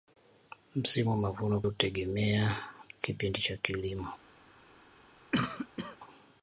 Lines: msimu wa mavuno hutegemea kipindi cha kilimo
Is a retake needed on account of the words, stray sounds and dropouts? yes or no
yes